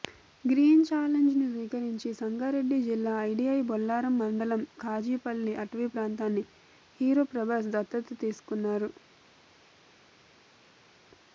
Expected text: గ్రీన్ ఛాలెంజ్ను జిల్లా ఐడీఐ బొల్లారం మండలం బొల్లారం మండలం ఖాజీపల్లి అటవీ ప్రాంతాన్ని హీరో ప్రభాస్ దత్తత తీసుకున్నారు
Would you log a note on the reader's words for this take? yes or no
yes